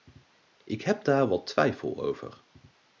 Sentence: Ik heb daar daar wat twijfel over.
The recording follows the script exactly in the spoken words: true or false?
false